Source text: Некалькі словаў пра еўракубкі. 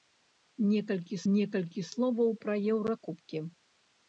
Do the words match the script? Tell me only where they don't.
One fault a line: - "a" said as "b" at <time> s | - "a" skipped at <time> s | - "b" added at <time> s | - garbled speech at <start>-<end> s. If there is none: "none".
- "некалькі" added at 1.3 s